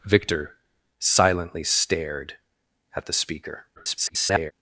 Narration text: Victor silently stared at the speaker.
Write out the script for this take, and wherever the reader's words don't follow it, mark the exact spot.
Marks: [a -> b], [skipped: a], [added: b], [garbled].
Victor silently stared at the speaker. [garbled]